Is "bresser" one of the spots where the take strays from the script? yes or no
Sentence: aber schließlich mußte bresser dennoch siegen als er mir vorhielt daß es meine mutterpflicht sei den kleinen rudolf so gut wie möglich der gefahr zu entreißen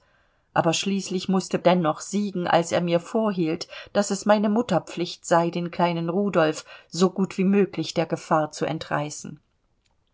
yes